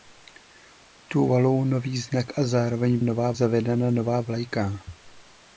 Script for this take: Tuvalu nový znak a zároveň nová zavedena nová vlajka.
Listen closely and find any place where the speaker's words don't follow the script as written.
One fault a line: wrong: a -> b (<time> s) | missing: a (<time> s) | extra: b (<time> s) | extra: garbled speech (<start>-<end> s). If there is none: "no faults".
no faults